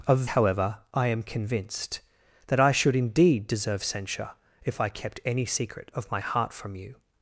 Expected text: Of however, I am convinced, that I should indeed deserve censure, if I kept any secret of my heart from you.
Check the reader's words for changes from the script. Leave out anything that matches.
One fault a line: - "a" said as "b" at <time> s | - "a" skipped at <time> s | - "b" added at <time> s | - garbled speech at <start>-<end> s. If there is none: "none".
none